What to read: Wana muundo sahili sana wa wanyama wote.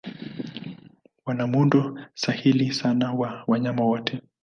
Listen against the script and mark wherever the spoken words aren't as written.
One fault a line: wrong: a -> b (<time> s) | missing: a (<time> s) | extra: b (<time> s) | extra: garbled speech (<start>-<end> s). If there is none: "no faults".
no faults